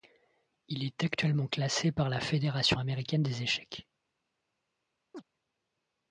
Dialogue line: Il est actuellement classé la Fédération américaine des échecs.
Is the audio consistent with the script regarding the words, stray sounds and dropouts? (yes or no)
no